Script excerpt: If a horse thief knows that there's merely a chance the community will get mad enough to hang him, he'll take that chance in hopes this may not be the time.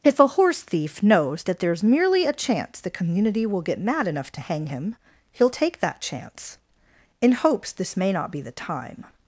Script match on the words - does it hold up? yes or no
yes